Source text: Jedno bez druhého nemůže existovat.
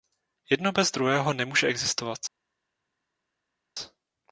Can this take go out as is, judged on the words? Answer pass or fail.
pass